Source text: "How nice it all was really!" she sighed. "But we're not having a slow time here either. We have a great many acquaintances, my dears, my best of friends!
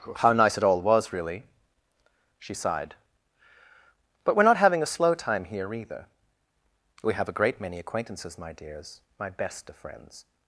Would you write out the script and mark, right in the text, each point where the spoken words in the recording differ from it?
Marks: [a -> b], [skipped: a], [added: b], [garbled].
"How nice it all was really!" she sighed. "But we're not having a slow time here either. We have a great many acquaintances, my dears, my best of friends!